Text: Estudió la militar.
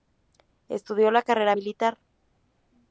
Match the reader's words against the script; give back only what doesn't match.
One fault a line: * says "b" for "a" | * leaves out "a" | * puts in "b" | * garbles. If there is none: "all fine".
* puts in "carrera"